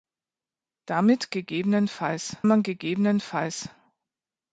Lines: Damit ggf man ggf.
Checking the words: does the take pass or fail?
pass